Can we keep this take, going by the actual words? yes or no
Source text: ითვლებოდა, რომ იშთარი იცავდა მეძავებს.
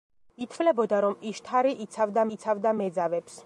no